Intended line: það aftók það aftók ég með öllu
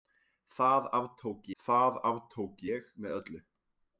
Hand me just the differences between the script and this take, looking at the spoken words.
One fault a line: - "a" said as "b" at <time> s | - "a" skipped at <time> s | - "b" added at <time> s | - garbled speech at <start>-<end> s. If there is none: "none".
none